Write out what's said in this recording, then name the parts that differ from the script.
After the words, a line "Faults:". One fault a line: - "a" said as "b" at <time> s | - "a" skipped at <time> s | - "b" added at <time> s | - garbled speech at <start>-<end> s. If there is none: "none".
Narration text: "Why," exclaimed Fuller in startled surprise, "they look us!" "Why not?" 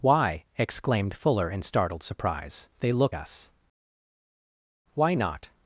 "Why," exclaimed Fuller in startled surprise, "they look us!" "Why not?"
Faults:
none